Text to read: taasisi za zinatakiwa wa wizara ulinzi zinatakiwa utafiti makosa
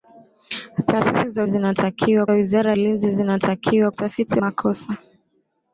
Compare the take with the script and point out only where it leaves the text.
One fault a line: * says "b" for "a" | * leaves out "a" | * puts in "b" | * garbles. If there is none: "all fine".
all fine